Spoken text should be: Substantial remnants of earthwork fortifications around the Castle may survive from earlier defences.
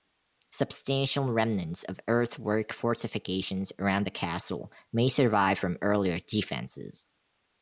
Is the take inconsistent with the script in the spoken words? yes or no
no